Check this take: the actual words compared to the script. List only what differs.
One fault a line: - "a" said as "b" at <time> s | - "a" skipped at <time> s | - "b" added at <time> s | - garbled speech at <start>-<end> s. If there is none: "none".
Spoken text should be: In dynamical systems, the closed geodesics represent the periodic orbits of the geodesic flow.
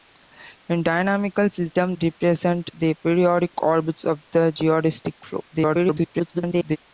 - "the closed geodesics" skipped at 1.9 s
- garbled speech at 5.5-6.8 s